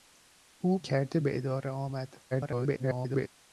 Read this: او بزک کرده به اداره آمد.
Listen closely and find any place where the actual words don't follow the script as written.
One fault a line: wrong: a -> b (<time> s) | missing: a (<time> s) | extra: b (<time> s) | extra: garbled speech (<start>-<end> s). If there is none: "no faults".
missing: بزک (0.8 s)
extra: garbled speech (2.3-3.3 s)